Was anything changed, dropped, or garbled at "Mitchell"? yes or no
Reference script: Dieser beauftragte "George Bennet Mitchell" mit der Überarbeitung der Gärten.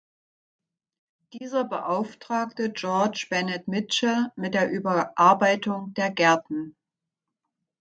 no